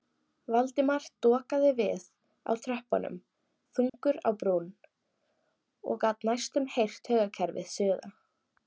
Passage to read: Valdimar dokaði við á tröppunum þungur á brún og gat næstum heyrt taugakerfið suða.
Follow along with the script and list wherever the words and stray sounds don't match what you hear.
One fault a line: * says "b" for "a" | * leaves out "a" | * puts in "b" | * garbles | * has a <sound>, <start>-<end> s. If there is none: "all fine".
* has a dropout, 3.9-3.9 s